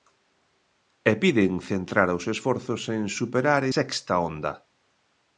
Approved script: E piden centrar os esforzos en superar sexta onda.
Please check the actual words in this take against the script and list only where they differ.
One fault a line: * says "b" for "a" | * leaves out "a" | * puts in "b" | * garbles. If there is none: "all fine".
all fine